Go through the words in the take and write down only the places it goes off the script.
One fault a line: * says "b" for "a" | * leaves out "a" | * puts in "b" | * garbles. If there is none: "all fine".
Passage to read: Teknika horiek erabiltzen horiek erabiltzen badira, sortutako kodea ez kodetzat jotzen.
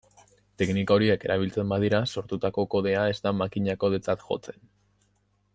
* leaves out "horiek erabiltzen"
* puts in "da makina"